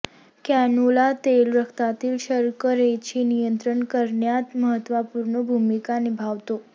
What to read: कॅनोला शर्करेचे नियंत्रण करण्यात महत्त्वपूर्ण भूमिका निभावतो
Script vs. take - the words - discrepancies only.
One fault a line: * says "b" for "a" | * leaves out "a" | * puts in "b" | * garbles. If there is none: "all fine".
* puts in "तेल रक्तातील"